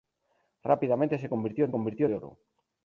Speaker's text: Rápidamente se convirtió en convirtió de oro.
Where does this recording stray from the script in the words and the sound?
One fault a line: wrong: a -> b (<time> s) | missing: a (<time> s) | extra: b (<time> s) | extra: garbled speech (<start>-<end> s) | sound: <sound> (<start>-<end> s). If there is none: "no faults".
no faults